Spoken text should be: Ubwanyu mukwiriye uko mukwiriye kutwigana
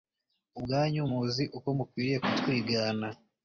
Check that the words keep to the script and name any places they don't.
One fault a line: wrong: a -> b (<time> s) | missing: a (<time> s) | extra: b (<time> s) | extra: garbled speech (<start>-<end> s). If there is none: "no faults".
wrong: mukwiriye -> muzi (1.1 s)